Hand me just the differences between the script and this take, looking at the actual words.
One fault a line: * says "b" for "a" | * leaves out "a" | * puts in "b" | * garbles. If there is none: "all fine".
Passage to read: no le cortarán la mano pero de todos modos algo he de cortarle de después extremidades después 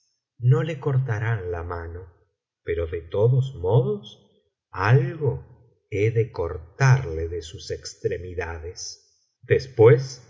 * says "sus" for "después"